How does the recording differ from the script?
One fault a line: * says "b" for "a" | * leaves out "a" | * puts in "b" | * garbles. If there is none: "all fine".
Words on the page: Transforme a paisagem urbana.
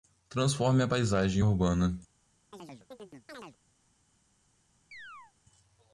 all fine